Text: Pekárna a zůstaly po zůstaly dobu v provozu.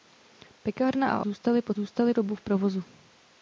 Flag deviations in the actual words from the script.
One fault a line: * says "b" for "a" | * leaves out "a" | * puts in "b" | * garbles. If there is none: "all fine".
all fine